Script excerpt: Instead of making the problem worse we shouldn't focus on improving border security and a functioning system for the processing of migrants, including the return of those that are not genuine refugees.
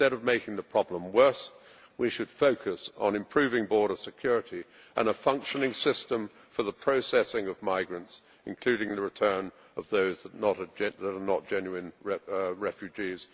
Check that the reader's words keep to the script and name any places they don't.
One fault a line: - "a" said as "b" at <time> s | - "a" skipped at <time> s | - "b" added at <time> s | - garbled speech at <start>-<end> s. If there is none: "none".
- "shouldn't" said as "should" at 2.1 s